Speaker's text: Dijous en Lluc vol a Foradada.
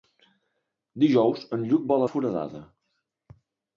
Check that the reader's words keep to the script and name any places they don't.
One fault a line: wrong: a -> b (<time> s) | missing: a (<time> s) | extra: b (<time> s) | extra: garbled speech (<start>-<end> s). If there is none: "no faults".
no faults